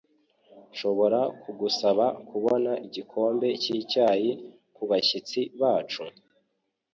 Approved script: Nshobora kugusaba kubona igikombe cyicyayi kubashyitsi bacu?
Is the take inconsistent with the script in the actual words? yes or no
no